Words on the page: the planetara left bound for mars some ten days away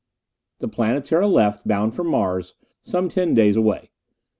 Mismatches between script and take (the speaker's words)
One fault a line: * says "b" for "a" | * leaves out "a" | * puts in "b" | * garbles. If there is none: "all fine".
all fine